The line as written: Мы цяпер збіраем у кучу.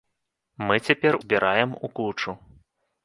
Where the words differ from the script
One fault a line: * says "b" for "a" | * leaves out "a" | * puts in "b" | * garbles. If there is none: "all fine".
all fine